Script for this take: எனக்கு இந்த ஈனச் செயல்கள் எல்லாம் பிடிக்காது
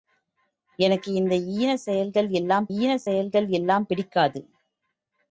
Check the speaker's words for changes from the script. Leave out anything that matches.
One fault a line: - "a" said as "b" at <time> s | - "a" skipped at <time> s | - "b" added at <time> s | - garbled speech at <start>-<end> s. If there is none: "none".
- "ஈனச் செயல்கள் எல்லாம்" added at 2.8 s